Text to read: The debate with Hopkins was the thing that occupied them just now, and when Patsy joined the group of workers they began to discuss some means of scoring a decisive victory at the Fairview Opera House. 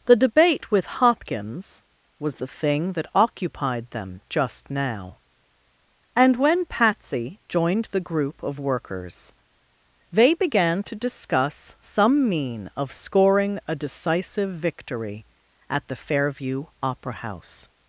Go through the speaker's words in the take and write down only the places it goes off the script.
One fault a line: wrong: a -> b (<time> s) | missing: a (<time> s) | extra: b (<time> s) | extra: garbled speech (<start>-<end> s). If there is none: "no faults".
wrong: means -> mean (12.3 s)